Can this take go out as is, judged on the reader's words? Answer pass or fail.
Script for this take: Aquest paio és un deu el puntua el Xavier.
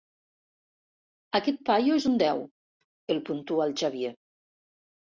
pass